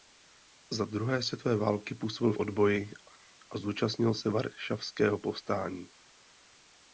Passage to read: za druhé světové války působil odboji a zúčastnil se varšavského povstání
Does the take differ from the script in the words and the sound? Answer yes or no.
no